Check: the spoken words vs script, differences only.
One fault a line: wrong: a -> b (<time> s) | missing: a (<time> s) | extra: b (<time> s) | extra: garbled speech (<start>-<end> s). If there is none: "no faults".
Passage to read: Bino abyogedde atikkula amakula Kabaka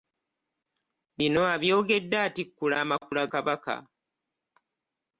no faults